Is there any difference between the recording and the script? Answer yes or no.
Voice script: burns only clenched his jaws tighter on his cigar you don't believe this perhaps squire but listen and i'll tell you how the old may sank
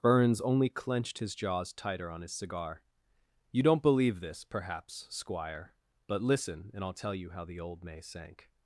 no